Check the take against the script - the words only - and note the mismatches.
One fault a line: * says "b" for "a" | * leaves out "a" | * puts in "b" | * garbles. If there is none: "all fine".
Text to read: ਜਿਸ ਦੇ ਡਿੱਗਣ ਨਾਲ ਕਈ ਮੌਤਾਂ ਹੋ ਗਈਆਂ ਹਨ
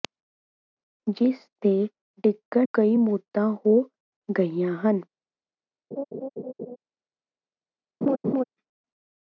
* leaves out "ਨਾਲ"